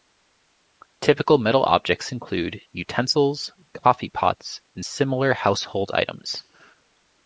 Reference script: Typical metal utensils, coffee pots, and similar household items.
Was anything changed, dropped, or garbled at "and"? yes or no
no